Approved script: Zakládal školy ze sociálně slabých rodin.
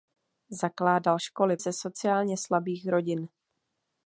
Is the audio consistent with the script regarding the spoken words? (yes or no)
yes